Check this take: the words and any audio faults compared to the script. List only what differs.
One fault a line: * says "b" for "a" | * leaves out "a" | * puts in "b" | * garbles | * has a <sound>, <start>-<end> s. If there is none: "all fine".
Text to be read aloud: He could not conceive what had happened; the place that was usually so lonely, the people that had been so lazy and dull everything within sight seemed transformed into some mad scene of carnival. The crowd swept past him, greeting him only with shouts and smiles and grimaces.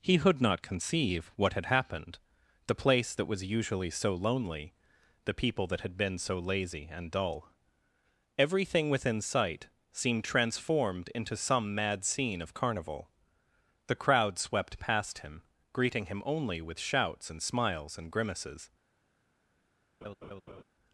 * has a laugh, 20.0-20.6 s